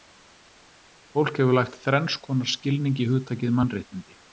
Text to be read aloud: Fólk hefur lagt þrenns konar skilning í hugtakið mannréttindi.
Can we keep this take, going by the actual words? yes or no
yes